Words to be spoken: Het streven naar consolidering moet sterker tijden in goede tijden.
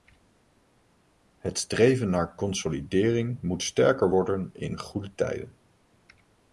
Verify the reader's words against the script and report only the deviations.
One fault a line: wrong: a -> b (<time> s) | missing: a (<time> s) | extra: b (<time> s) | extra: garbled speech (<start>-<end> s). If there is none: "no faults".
wrong: tijden -> worden (4.1 s)